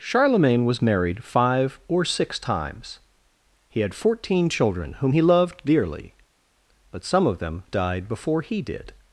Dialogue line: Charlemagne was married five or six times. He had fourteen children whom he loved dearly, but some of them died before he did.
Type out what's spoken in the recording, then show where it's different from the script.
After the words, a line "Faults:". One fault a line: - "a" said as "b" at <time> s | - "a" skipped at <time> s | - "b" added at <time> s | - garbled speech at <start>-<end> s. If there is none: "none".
Charlemagne was married five or six times. He had fourteen children whom he loved dearly, but some of them died before he did.
Faults:
none